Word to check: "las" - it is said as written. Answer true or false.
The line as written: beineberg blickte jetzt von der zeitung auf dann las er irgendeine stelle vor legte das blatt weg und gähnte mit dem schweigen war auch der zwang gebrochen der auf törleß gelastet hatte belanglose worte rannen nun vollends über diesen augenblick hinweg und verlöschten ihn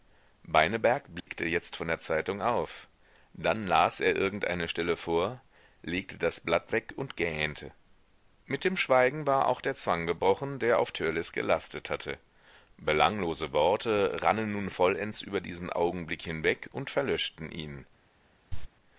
true